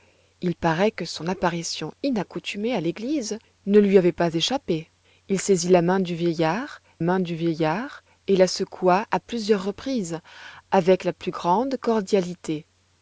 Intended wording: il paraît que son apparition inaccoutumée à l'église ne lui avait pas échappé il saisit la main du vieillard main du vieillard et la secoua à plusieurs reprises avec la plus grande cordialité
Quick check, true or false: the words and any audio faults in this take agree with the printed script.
true